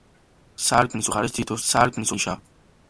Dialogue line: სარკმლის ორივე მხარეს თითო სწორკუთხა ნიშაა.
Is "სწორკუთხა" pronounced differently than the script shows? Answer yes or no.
yes